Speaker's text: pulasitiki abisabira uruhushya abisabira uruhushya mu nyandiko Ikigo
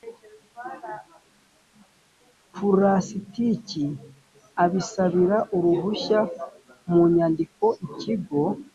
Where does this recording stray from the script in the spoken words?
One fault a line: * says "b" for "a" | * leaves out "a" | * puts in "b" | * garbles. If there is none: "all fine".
* leaves out "abisabira uruhushya"